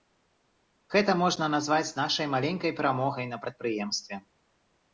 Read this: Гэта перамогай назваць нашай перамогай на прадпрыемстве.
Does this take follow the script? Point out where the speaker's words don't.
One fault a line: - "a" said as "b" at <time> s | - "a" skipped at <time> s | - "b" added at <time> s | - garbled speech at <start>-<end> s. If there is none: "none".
- "перамогай" said as "можна" at 1.2 s
- "маленькай" added at 2.4 s